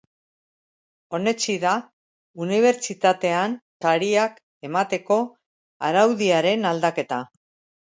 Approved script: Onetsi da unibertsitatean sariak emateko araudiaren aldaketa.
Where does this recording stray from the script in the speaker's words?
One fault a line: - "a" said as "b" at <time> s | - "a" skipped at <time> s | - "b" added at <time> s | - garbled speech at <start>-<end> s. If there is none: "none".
none